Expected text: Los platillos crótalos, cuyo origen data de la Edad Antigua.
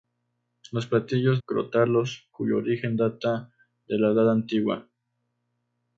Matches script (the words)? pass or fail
pass